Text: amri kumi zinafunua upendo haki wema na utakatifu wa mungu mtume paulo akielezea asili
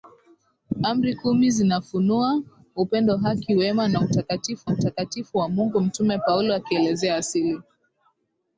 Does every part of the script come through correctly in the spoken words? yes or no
no